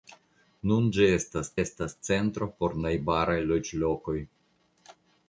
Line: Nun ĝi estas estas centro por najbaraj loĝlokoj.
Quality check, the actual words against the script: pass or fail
pass